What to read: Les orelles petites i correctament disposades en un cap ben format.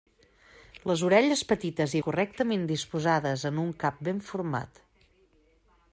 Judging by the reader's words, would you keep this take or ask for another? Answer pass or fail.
pass